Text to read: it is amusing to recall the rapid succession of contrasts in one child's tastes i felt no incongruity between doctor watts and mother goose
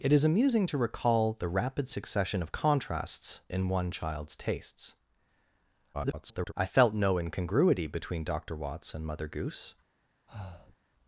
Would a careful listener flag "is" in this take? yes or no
no